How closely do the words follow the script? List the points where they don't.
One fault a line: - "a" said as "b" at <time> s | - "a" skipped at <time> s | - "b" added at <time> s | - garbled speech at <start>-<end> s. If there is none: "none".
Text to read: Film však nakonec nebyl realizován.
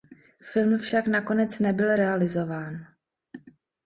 none